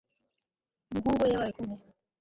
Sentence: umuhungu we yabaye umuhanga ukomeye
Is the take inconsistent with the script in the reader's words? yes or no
yes